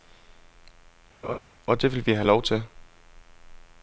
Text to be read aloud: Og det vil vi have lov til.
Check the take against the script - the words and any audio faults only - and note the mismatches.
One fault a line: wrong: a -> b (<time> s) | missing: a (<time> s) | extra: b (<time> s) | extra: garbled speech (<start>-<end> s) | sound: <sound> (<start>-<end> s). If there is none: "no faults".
sound: laugh (1.2-1.4 s)